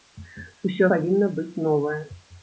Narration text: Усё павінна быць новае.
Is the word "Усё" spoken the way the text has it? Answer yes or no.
yes